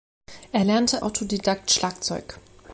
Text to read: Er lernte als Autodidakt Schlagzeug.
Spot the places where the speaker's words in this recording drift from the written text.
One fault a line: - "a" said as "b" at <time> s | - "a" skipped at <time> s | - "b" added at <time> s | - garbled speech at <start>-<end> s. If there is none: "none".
- "als" skipped at 1.0 s